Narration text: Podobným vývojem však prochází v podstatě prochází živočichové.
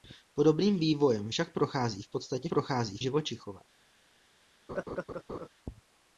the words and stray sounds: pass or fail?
fail